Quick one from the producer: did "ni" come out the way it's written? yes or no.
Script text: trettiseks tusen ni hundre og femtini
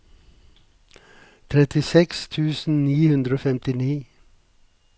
yes